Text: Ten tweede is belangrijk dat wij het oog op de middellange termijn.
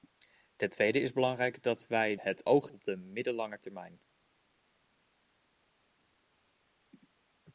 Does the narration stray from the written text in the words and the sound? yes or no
no